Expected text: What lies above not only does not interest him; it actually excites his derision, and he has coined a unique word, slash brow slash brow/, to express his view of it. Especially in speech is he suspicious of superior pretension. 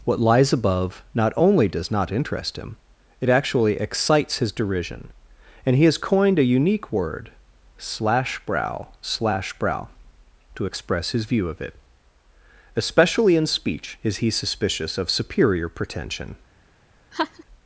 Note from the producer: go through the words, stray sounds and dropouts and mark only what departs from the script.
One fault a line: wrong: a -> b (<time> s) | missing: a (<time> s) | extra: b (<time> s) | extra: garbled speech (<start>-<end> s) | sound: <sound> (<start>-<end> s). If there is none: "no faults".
sound: laugh (17.1-17.4 s)